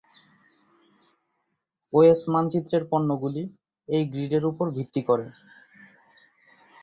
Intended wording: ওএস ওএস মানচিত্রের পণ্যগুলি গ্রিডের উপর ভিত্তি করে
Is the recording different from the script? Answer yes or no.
yes